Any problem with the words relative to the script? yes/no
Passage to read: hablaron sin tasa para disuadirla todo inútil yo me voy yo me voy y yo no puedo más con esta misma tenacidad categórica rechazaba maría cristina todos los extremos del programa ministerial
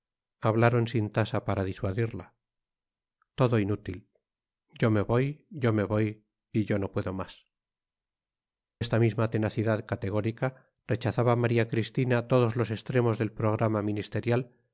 yes